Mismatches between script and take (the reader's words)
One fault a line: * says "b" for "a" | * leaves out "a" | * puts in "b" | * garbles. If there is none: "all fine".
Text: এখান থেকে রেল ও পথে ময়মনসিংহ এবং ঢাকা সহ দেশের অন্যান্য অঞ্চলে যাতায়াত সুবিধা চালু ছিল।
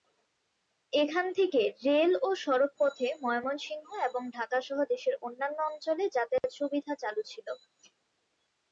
* puts in "সড়ক"